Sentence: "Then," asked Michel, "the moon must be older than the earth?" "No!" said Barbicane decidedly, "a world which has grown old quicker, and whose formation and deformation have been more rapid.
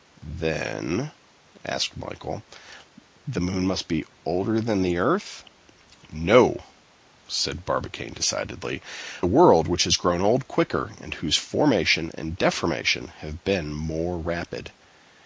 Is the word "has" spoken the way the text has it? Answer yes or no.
yes